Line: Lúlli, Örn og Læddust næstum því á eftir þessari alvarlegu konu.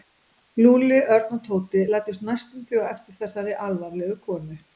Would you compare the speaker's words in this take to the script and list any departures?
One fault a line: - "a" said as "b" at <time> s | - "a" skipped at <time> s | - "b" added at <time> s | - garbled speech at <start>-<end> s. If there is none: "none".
- "Tóti" added at 1.5 s